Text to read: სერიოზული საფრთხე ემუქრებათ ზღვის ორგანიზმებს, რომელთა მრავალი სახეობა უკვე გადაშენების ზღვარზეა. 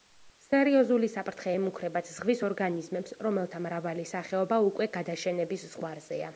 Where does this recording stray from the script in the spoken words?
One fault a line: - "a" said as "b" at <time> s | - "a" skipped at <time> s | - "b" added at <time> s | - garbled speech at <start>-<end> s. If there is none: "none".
none